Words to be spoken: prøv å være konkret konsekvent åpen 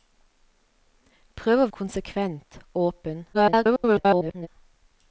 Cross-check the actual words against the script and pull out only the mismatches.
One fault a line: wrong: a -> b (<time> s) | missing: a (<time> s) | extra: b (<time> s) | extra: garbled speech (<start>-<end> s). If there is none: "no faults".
missing: være konkret (1.7 s)
extra: garbled speech (3.3-4.5 s)